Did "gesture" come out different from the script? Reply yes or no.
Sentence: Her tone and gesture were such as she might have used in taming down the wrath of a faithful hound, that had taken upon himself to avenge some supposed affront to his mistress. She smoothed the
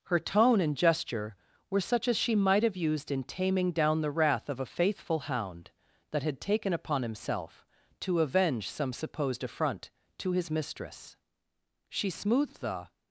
no